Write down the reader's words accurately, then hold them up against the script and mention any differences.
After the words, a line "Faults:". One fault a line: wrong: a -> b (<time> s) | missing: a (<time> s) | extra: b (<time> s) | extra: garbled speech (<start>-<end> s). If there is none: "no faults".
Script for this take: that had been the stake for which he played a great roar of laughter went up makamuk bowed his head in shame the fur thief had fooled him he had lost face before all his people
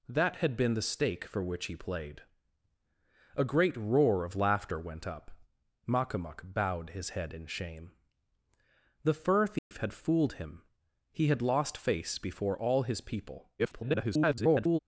that had been the stake for which he played a great roar of laughter went up makamuk bowed his head in shame the fur thief had fooled him he had lost face before all his people [garbled]
Faults:
extra: garbled speech (13.6-14.8 s)